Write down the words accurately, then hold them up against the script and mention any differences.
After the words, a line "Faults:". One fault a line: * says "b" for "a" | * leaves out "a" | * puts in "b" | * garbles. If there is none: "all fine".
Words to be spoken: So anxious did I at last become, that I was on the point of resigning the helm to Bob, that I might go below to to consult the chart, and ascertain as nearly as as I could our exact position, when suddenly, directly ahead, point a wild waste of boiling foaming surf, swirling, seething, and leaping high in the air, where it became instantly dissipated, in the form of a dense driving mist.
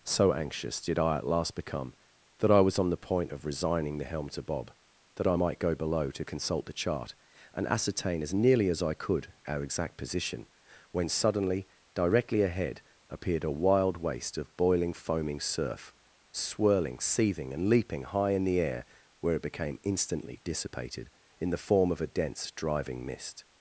So anxious did I at last become, that I was on the point of resigning the helm to Bob, that I might go below to consult the chart, and ascertain as nearly as I could our exact position, when suddenly, directly ahead, appeared a wild waste of boiling foaming surf, swirling, seething, and leaping high in the air, where it became instantly dissipated, in the form of a dense driving mist.
Faults:
* leaves out "to"
* leaves out "as"
* says "appeared" for "point"